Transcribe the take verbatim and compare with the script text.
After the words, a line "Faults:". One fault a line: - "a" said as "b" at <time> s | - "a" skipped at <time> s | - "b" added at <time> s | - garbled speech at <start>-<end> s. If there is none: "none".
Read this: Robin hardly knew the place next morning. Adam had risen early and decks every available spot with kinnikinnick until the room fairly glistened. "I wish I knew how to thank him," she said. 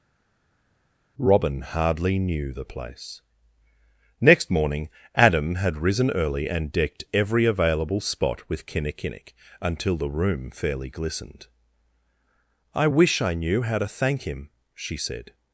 Robin hardly knew the place next morning. Adam had risen early and decked every available spot with kinnikinnick until the room fairly glistened. "I wish I knew how to thank him," she said.
Faults:
- "decks" said as "decked" at 6.7 s